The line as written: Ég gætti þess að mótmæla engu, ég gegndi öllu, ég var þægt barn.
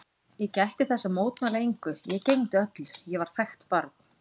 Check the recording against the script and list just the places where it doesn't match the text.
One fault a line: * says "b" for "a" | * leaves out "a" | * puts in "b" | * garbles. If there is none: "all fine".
all fine